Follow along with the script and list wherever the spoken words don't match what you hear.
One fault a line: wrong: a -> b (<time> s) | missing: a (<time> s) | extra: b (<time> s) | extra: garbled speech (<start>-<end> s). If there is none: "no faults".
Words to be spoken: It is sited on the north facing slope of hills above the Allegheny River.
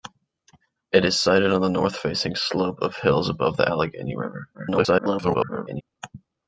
extra: garbled speech (4.5-5.8 s)